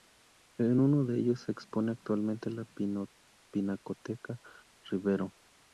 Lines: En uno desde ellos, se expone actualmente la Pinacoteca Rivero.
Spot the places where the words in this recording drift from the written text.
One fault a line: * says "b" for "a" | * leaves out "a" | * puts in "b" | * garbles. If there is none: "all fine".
* says "de" for "desde"